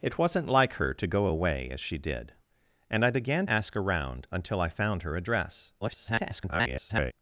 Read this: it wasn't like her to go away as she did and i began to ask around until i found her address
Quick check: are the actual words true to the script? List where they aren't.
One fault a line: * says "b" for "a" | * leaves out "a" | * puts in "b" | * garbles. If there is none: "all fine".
* leaves out "to"
* garbles